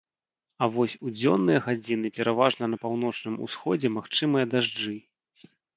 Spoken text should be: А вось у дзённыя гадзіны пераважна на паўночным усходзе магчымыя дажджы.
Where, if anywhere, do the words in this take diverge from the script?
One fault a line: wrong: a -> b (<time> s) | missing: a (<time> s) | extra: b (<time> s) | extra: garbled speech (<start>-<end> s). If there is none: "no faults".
no faults